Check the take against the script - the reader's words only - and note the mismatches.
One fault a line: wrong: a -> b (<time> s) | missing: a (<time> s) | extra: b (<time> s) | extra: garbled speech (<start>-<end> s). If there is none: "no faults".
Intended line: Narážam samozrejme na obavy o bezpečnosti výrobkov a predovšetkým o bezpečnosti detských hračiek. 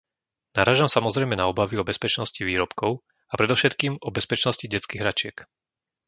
no faults